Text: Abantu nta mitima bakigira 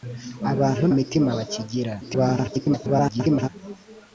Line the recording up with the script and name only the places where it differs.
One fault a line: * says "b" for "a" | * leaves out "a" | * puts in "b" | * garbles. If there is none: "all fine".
* leaves out "nta"
* garbles